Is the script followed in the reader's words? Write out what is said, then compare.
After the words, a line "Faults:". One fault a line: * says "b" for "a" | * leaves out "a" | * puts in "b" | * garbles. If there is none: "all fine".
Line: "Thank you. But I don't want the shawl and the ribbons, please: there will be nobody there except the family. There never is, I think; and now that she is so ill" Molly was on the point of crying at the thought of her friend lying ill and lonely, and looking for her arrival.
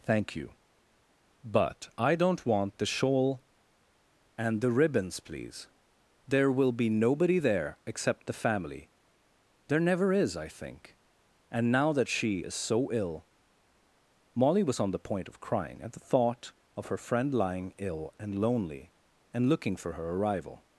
"Thank you. But I don't want the shawl and the ribbons, please: there will be nobody there except the family. There never is, I think; and now that she is so ill" Molly was on the point of crying at the thought of her friend lying ill and lonely, and looking for her arrival.
Faults:
all fine